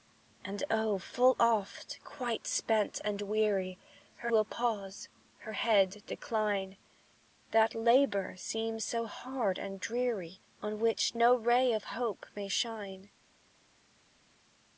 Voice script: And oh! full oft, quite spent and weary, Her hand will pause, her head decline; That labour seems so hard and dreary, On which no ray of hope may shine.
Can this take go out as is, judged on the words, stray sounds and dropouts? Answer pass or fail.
fail